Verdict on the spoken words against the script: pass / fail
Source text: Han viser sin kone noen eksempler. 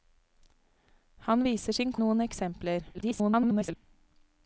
fail